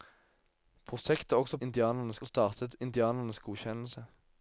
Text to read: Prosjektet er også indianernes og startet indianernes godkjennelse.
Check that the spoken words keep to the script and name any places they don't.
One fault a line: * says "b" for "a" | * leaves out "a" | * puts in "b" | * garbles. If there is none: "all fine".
all fine